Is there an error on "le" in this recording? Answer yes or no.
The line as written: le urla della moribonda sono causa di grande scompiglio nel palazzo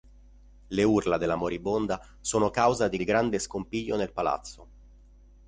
no